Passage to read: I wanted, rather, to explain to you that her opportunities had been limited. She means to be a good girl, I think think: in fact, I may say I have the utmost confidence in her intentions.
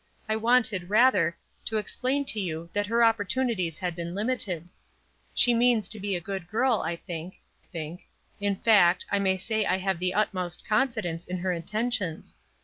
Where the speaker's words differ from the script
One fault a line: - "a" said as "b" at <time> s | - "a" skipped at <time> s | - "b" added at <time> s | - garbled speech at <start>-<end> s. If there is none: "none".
none